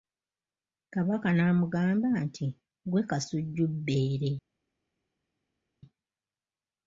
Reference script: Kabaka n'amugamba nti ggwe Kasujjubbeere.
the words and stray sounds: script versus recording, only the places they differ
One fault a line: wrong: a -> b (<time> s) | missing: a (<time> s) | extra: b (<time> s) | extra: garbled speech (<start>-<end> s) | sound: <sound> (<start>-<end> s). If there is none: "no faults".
no faults